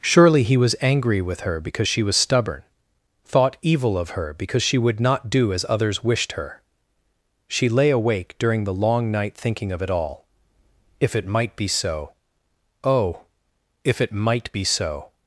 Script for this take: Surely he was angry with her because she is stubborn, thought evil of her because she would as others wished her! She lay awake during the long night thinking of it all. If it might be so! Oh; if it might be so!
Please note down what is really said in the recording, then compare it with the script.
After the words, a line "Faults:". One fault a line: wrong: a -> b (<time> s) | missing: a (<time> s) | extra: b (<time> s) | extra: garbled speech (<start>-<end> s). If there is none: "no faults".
Surely he was angry with her because she was stubborn, thought evil of her because she would not do as others wished her! She lay awake during the long night thinking of it all. If it might be so! Oh; if it might be so!
Faults:
wrong: is -> was (2.0 s)
extra: not do (5.0 s)